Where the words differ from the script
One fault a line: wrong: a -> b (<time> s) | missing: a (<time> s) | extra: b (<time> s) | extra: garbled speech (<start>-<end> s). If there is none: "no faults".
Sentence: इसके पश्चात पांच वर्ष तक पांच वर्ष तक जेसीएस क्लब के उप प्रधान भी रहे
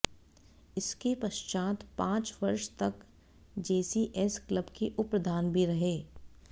missing: पांच वर्ष तक (3.0 s)